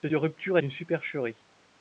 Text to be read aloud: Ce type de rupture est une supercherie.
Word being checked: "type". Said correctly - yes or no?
no